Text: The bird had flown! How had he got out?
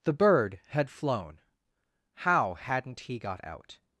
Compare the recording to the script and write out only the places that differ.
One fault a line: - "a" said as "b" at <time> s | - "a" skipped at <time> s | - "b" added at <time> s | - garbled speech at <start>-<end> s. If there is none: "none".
- "had" said as "hadn't" at 2.5 s